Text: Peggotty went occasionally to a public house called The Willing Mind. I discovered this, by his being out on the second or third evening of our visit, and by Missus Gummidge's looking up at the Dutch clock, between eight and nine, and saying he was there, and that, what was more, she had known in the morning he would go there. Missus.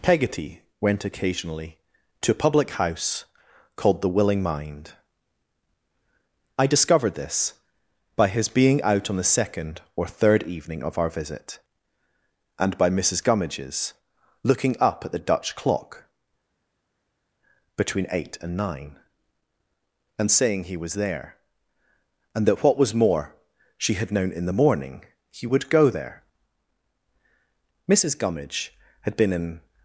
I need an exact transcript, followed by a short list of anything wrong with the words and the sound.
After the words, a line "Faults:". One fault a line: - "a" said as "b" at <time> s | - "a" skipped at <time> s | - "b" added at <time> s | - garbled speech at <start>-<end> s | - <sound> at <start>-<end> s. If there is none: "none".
Peggotty went occasionally to a public house called The Willing Mind. I discovered this, by his being out on the second or third evening of our visit, and by Missus Gummidge's looking up at the Dutch clock, between eight and nine, and saying he was there, and that, what was more, she had known in the morning he would go there. Missus Gummidge had been in
Faults:
- "Gummidge had been in" added at 28.2 s